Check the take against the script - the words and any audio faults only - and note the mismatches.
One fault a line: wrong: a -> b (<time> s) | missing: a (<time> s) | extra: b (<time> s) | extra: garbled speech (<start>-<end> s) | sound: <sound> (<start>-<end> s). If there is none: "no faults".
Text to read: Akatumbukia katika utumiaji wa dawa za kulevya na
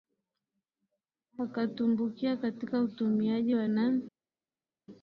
missing: dawa za kulevya (3.7 s)